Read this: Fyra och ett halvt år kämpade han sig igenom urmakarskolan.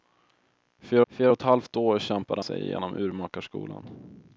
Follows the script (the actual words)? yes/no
no